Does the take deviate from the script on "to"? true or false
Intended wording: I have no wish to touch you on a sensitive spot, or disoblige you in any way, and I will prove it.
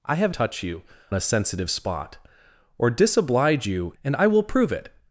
true